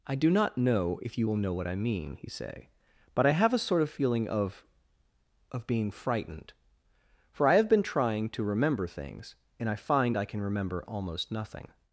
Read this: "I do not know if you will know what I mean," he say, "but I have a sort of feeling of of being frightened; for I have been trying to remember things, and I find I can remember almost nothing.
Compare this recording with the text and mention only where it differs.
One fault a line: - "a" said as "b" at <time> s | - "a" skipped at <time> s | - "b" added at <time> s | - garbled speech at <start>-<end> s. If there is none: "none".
none